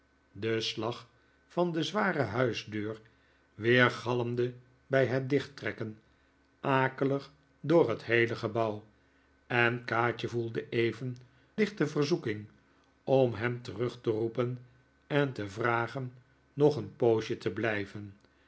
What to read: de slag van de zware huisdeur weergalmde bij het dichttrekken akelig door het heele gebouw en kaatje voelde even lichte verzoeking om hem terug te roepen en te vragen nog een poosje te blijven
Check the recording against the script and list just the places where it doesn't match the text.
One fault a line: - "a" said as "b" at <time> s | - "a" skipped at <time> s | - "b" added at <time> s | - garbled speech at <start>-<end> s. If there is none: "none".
none